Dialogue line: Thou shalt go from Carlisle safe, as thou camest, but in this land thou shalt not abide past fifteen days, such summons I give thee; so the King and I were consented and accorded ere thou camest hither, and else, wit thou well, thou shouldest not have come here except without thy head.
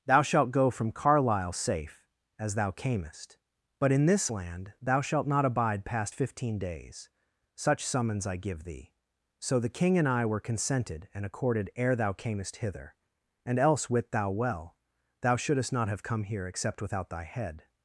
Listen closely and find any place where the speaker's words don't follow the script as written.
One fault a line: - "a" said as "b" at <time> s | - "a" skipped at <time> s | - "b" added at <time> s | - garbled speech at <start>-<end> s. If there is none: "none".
none